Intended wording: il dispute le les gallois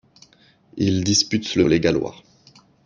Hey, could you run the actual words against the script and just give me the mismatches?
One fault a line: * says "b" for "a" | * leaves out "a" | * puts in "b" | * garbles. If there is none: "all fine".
all fine